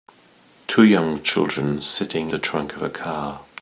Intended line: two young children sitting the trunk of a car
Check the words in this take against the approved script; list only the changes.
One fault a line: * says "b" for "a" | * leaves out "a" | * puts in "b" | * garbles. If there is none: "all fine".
all fine